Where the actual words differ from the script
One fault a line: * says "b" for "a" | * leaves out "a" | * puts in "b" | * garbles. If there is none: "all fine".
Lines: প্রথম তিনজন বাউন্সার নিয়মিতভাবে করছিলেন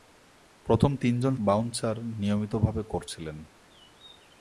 all fine